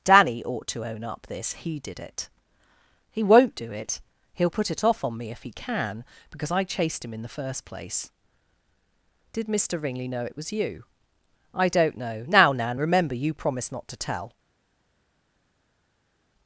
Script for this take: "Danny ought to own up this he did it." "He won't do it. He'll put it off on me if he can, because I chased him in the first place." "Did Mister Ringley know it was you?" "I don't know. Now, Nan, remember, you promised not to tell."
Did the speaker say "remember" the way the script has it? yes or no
yes